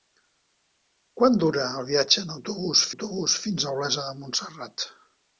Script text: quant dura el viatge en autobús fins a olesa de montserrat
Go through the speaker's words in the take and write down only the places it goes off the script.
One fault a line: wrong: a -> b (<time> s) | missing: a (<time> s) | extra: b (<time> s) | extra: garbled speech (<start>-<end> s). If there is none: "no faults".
extra: autobús (2.9 s)